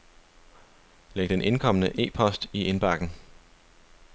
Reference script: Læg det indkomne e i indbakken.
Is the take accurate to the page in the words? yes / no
no